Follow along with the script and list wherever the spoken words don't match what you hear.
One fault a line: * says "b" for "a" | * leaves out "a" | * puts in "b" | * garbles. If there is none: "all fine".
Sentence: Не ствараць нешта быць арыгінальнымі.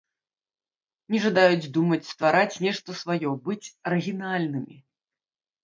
* puts in "жадаюць думаць"
* puts in "сваё"